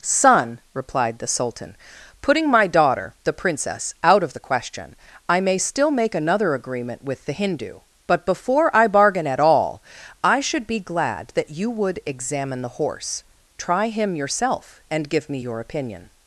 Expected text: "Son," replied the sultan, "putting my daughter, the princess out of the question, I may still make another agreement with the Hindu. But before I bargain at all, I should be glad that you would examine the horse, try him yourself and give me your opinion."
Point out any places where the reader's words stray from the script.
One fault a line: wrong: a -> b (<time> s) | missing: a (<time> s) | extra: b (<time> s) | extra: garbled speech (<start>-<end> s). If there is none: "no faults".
no faults